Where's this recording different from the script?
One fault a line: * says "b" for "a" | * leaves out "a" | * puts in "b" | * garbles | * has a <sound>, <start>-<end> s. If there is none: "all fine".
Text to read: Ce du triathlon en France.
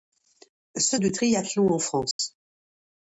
* has a dropout, 2.1-2.2 s